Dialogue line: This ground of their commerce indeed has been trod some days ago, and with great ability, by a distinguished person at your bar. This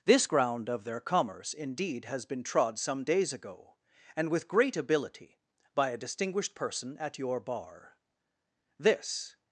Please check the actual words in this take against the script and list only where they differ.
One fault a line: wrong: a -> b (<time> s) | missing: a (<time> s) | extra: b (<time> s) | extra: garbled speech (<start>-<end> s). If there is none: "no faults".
no faults